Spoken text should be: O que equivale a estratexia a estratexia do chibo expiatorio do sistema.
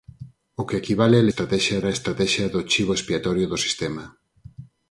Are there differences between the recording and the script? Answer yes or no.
no